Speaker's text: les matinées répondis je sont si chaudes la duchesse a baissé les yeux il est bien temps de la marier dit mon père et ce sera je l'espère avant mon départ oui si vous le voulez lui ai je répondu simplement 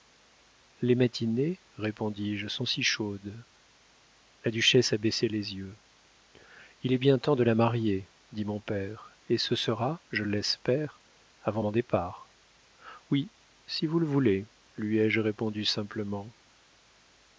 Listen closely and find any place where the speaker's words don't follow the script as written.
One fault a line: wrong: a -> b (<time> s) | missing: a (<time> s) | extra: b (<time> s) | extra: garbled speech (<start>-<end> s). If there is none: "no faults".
no faults